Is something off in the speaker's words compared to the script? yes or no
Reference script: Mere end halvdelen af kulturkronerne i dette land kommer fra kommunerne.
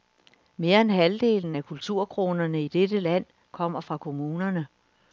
no